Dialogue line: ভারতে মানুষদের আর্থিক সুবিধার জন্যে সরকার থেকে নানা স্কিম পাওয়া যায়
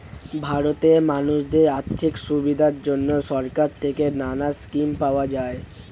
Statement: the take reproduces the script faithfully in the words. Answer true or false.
true